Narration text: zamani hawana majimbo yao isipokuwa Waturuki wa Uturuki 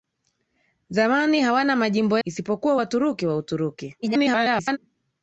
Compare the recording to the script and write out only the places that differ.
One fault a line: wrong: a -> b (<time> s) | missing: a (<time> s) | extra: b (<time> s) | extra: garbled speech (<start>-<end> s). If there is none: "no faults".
missing: yao (2.2 s)
extra: garbled speech (4.0-4.8 s)